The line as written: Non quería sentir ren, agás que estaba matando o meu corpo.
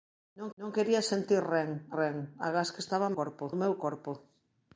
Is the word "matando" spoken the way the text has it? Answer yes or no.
no